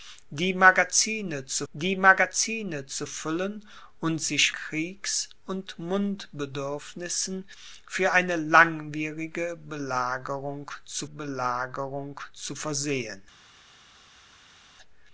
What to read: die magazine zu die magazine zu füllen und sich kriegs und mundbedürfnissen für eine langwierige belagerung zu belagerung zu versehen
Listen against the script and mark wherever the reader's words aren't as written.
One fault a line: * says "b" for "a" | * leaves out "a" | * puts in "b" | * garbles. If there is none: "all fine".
all fine